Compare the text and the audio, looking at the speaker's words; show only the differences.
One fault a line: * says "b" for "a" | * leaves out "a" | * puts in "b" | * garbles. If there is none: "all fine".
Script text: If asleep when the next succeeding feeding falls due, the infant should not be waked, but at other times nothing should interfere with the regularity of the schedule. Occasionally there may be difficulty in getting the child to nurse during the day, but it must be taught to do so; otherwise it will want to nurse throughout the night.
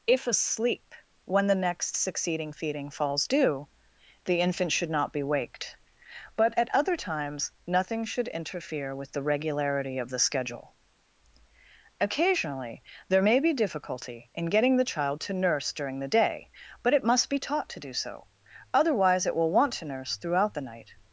all fine